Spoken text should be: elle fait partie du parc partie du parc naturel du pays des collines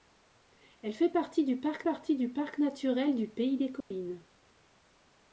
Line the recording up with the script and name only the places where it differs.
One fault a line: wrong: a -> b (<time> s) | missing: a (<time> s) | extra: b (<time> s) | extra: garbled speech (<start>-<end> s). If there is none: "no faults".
no faults